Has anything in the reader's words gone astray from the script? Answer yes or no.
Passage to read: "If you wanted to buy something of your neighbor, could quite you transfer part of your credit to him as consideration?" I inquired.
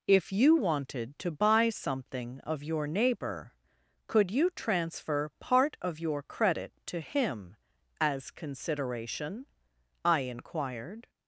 yes